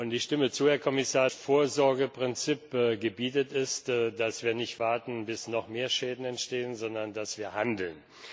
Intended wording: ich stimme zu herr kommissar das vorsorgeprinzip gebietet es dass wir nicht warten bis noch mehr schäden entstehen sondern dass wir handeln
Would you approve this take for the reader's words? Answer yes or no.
no